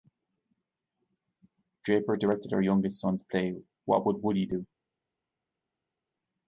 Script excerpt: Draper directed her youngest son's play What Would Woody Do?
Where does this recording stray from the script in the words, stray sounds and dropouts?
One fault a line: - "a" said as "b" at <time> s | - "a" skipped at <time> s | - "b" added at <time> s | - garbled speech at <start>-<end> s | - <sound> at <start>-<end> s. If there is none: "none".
none